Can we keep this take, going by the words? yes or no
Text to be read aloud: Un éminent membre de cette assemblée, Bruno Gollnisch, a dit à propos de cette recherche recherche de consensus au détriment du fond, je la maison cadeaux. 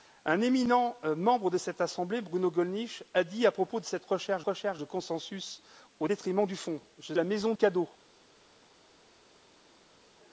yes